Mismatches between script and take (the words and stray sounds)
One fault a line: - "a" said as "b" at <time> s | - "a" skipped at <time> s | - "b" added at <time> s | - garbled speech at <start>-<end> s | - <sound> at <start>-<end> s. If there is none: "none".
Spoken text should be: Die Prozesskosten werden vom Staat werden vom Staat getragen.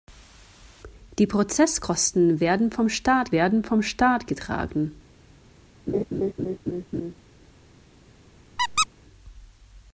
- laugh at 5.9-7.1 s
- squeak at 8.6-8.9 s